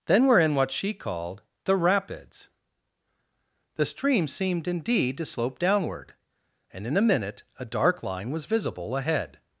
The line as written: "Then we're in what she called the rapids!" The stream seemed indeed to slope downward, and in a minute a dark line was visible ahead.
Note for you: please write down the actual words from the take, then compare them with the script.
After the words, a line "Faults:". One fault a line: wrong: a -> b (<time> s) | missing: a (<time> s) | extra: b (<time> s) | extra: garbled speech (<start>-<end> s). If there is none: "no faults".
"Then we're in what she called the rapids!" The stream seemed indeed to slope downward, and in a minute a dark line was visible ahead.
Faults:
no faults